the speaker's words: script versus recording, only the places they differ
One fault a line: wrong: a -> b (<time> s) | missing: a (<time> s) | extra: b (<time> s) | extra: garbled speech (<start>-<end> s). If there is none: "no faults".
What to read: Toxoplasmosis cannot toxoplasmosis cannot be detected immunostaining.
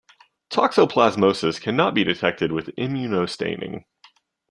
missing: toxoplasmosis cannot (1.9 s)
extra: with (2.5 s)